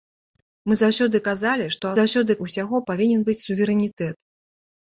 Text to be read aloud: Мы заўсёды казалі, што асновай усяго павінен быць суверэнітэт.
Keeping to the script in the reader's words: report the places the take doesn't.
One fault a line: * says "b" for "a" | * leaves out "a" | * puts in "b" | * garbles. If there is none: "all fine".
* says "заўсёды" for "асновай"